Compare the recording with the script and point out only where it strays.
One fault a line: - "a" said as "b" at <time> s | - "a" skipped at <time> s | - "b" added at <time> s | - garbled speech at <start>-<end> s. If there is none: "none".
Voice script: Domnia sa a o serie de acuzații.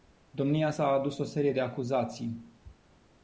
- "adus" added at 0.9 s